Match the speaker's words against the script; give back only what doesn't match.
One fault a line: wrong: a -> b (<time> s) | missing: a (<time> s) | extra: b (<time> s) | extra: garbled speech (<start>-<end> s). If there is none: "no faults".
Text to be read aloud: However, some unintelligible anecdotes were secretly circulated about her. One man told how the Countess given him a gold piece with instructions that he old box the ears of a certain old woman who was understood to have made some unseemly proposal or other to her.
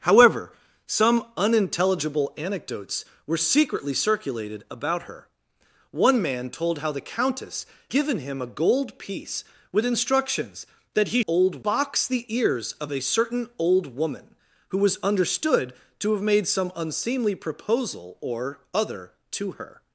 no faults